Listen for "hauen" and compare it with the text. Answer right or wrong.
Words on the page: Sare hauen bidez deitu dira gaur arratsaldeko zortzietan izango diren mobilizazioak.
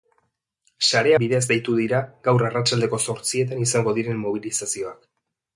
wrong